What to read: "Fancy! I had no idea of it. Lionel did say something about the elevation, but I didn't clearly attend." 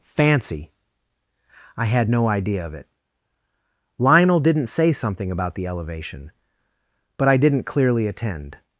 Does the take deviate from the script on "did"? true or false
true